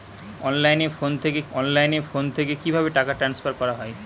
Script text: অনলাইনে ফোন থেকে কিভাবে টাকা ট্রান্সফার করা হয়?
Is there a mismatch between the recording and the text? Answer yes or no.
yes